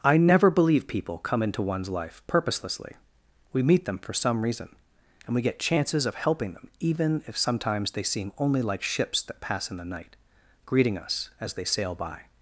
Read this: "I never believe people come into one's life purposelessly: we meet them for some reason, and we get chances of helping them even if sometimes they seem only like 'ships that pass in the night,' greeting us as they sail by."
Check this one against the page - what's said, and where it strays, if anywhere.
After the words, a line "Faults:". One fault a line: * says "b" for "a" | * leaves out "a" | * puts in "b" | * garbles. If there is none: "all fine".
"I never believe people come into one's life purposelessly: we meet them for some reason, and we get chances of helping them even if sometimes they seem only like 'ships that pass in the night,' greeting us as they sail by."
Faults:
all fine